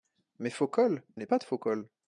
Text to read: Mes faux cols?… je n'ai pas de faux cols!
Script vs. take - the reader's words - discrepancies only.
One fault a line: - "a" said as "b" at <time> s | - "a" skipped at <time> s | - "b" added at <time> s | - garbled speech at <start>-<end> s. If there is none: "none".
- "je" skipped at 1.0 s